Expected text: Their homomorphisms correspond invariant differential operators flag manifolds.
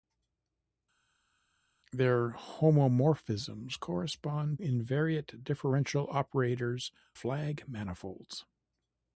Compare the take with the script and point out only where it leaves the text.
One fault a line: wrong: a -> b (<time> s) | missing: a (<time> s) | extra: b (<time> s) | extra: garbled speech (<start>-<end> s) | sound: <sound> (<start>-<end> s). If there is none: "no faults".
no faults